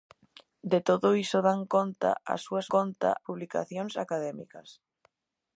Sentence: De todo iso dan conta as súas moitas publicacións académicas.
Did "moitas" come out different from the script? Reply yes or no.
yes